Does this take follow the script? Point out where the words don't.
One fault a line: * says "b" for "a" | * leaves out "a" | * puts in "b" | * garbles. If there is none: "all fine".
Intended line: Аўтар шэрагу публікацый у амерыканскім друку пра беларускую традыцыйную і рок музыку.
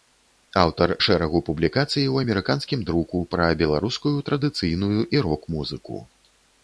all fine